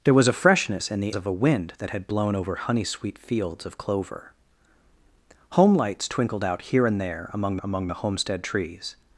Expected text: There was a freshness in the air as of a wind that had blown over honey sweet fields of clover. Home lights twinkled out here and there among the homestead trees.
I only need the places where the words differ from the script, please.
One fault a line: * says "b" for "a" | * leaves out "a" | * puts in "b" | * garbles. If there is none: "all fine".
* leaves out "air as"
* puts in "among"